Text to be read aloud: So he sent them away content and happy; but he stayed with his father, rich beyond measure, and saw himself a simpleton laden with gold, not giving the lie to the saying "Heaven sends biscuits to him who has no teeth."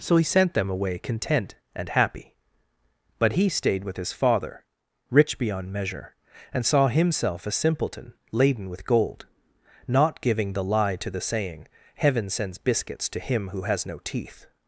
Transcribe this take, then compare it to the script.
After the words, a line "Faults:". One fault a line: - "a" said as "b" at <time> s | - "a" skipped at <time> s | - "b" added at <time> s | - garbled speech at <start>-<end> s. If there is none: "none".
So he sent them away content and happy; but he stayed with his father, rich beyond measure, and saw himself a simpleton laden with gold, not giving the lie to the saying "Heaven sends biscuits to him who has no teeth."
Faults:
none